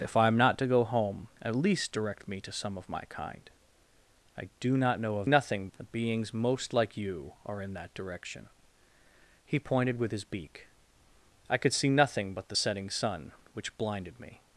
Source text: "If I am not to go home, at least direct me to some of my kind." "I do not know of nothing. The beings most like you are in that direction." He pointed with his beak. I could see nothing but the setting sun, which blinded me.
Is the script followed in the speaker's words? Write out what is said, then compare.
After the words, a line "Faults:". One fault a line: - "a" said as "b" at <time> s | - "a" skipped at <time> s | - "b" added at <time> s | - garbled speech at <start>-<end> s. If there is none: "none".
"If I am not to go home, at least direct me to some of my kind." "I do not know of nothing. The beings most like you are in that direction." He pointed with his beak. I could see nothing but the setting sun, which blinded me.
Faults:
none